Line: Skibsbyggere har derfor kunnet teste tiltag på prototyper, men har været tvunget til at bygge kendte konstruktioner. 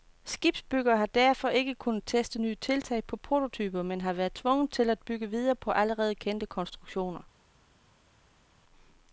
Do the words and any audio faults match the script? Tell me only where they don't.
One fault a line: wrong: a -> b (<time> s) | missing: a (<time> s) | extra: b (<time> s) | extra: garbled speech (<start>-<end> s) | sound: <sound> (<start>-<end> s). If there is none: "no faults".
extra: ikke (1.5 s)
extra: nye (2.4 s)
extra: videre på allerede (5.3 s)